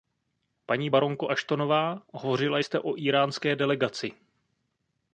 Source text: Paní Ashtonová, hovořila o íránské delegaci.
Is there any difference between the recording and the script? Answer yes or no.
yes